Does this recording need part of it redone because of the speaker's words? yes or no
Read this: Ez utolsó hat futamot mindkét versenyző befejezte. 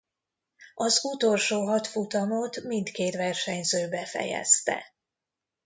yes